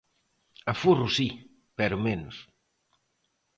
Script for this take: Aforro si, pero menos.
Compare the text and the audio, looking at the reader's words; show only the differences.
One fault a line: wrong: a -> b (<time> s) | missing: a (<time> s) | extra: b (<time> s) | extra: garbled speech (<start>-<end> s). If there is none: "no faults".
no faults